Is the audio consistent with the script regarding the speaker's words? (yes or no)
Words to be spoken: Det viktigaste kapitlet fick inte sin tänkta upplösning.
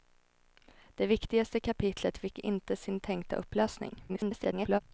no